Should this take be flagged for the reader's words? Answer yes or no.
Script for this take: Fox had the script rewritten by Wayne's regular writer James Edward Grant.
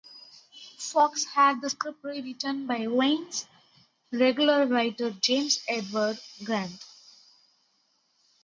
no